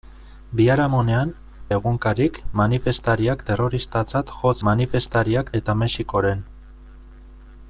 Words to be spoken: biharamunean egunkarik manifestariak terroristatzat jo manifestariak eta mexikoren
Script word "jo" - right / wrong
right